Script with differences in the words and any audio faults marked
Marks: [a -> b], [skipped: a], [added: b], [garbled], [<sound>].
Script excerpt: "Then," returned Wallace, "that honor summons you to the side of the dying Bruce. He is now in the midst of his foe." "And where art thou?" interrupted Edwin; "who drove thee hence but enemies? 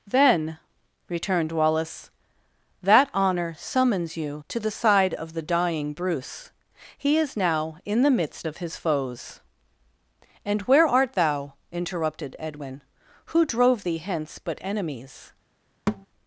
"Then," returned Wallace, "that honor summons you to the side of the dying Bruce. He is now in the midst of his [foe." -> foes] "And where art thou?" interrupted Edwin; "who drove thee hence but enemies? [thud]